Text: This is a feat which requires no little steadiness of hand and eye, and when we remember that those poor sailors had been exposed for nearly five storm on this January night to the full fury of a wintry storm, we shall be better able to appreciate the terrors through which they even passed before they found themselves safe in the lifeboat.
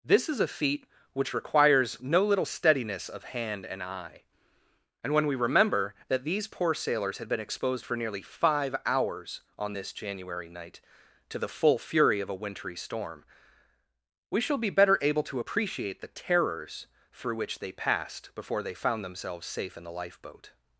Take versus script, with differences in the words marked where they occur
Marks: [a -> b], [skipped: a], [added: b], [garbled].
This is a feat which requires no little steadiness of hand and eye, and when we remember that [those -> these] poor sailors had been exposed for nearly five [storm -> hours] on this January night to the full fury of a wintry storm, we shall be better able to appreciate the terrors through which they [skipped: even] passed before they found themselves safe in the lifeboat.